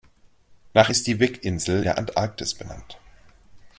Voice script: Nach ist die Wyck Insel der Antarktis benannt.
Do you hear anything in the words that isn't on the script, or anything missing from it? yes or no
no